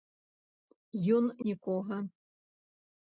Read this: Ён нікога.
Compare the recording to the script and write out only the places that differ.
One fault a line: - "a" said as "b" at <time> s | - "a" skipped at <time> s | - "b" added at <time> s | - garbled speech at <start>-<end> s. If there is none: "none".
none